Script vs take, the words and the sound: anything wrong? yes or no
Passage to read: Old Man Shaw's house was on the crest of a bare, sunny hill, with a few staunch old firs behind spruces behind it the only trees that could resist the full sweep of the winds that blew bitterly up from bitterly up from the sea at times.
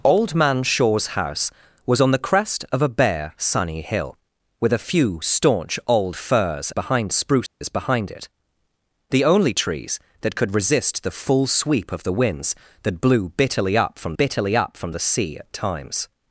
yes